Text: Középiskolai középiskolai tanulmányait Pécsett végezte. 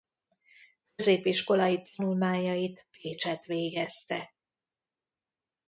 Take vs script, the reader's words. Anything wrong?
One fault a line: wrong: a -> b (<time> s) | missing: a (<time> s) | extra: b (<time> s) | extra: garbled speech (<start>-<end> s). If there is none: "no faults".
missing: középiskolai (1.8 s)